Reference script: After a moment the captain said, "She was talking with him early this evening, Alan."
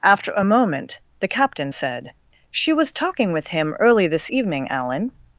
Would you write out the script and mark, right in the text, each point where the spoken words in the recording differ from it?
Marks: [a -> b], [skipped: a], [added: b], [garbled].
After a moment the captain said, "She was talking with him early this evening, Alan."